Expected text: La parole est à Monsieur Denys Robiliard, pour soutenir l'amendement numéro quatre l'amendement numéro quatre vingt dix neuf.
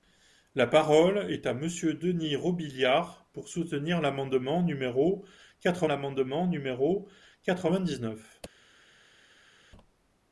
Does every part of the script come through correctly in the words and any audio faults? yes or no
yes